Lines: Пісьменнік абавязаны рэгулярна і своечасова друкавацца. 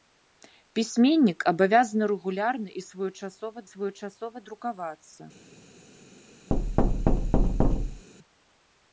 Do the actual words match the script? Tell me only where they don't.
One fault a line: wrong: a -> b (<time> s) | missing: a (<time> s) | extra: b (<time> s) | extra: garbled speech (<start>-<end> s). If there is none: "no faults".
extra: своечасова (3.7 s)